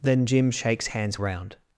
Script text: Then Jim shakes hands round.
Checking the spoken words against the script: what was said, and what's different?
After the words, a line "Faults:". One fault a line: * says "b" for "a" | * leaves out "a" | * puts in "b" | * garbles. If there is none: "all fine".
Then Jim shakes hands round.
Faults:
all fine